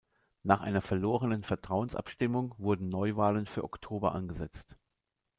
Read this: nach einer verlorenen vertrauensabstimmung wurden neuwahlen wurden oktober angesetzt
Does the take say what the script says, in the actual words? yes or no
no